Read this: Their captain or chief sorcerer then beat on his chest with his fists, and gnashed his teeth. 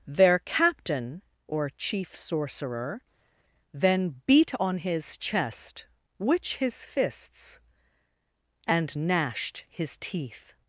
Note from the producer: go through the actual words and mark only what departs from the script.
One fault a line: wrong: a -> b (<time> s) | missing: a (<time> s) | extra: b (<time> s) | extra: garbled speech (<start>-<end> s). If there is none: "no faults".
wrong: with -> which (6.2 s)